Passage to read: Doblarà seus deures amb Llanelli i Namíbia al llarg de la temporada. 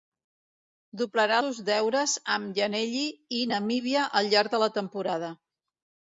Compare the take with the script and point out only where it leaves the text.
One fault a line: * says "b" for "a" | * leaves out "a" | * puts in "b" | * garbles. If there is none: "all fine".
all fine